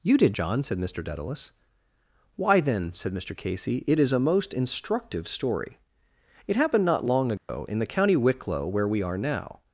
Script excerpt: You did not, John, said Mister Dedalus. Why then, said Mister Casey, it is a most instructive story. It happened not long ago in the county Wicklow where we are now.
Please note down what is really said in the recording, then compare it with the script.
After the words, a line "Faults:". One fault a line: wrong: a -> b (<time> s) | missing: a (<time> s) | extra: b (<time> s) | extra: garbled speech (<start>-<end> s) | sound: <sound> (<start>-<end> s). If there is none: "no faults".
You did John, said Mister Dedalus. Why then, said Mister Casey, it is a most instructive story. It happened not long ago in the county Wicklow where we are now.
Faults:
missing: not (0.3 s)
sound: dropout (7.4-7.5 s)